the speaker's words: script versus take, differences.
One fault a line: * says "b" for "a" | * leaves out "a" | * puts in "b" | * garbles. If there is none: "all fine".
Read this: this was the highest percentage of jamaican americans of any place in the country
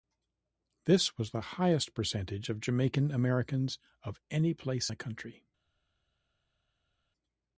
* leaves out "in"